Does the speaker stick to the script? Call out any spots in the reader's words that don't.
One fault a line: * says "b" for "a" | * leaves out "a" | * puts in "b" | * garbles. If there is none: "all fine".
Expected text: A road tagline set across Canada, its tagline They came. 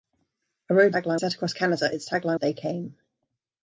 all fine